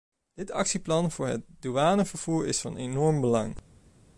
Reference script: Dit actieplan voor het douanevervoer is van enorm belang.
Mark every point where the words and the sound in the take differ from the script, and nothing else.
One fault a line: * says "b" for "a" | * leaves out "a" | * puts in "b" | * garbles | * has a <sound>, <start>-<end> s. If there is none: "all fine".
all fine